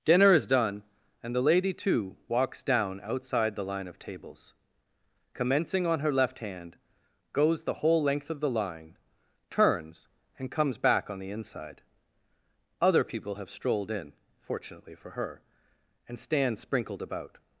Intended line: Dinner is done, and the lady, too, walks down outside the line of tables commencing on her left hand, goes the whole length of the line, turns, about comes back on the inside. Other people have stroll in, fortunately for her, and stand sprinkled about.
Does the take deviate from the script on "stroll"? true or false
true